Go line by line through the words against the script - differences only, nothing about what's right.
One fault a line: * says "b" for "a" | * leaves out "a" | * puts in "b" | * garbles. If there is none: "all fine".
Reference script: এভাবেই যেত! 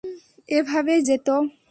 all fine